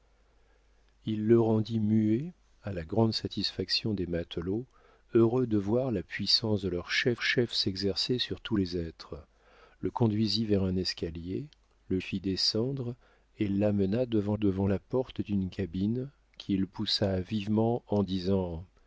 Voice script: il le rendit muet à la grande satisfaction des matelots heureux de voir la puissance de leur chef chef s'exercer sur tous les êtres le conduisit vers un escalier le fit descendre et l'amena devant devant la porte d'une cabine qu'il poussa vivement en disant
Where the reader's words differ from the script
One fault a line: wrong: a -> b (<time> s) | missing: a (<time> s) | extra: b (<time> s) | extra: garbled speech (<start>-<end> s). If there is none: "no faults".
no faults